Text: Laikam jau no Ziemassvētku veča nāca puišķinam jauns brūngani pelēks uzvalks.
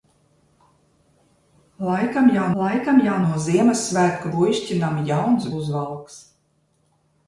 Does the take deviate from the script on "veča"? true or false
true